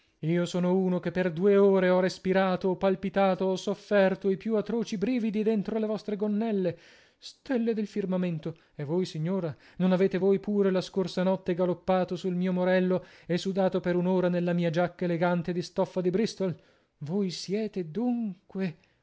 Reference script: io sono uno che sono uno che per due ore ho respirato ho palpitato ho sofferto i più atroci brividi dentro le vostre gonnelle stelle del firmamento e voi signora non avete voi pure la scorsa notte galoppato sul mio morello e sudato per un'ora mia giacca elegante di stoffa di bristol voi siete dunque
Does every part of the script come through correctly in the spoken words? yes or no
no